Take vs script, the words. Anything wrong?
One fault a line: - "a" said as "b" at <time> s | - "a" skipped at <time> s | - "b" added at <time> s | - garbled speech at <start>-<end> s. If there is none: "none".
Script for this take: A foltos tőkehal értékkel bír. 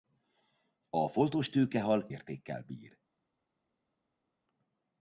none